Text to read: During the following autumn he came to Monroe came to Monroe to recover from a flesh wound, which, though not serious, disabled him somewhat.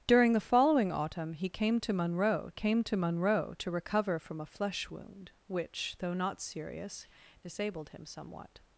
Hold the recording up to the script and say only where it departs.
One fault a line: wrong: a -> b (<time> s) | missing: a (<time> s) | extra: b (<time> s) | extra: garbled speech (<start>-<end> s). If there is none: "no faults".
no faults